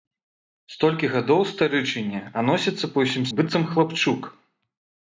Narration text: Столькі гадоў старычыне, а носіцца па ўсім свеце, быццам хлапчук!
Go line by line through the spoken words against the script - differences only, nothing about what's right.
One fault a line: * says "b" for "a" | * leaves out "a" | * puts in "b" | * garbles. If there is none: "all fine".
* leaves out "свеце"